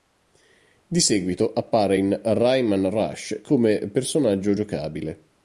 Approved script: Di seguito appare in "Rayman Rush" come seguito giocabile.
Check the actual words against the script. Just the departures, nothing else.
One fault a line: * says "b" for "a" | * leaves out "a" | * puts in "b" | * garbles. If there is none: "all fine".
* says "personaggio" for "seguito"